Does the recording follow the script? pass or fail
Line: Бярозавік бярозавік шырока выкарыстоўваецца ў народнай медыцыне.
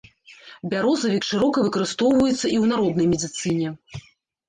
fail